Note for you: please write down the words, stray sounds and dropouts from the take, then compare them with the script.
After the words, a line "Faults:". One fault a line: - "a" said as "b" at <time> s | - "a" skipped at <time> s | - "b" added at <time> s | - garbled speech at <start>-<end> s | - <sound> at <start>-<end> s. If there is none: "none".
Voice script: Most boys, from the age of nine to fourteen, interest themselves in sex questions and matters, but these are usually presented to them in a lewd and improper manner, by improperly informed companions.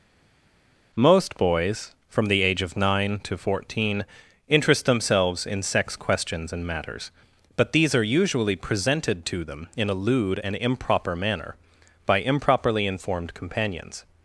Most boys, from the age of nine to fourteen, interest themselves in sex questions and matters, but these are usually presented to them in a lewd and improper manner, by improperly informed companions.
Faults:
none